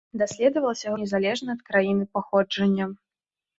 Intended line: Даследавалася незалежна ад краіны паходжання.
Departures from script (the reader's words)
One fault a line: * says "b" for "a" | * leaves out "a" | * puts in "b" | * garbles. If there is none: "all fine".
all fine